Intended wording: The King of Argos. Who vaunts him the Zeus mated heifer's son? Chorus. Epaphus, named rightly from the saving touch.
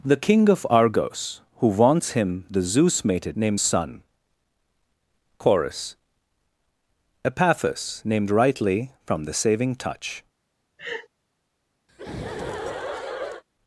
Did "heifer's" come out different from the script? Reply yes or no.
yes